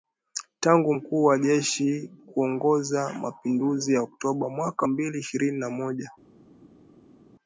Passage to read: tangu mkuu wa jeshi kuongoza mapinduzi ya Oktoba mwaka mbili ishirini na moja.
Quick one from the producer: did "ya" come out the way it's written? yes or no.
yes